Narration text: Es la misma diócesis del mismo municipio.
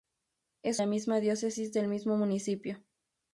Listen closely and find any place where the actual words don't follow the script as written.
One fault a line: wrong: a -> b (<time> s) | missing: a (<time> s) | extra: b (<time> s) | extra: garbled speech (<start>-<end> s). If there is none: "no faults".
no faults